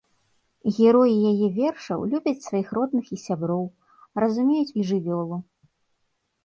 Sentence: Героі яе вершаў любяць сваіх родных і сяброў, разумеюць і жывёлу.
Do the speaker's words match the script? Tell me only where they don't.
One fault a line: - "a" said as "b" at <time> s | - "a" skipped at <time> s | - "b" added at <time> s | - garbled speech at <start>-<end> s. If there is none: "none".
none